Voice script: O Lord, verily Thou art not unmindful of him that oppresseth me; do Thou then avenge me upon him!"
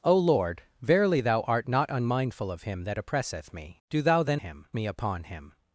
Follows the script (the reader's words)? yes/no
no